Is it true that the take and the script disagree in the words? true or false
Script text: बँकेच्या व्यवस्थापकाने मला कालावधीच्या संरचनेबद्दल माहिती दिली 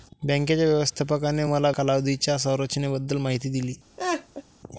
false